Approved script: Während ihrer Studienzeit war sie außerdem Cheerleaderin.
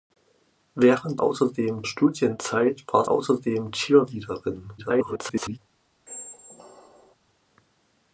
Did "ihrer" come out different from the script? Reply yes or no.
yes